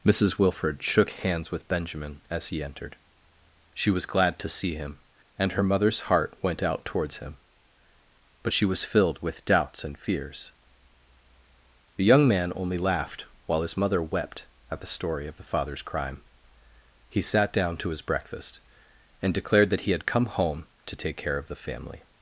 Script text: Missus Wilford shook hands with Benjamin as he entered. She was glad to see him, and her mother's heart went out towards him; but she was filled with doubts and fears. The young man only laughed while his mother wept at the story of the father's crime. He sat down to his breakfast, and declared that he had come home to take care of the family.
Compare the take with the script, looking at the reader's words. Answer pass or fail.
pass